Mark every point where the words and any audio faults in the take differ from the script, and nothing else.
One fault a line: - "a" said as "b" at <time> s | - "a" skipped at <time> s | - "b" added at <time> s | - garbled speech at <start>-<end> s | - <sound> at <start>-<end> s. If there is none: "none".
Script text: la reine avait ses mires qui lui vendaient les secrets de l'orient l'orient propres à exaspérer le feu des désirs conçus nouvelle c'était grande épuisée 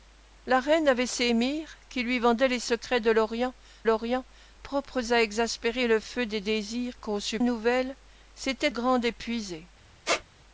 - squeak at 10.0-10.2 s